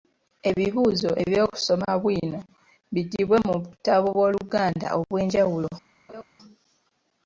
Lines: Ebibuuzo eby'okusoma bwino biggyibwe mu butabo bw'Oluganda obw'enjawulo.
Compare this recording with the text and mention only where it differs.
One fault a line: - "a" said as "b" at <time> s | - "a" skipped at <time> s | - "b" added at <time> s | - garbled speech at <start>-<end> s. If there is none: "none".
none